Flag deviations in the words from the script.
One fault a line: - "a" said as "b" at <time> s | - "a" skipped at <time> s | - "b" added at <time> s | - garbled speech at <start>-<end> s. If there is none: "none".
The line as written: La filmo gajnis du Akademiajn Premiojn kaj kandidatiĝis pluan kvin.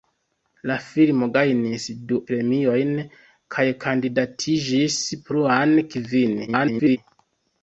- "Akademiajn" skipped at 2.2 s
- garbled speech at 6.5-7.0 s